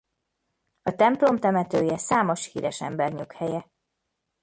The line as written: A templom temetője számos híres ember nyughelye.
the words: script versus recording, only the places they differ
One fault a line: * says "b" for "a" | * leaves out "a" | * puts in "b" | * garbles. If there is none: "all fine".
all fine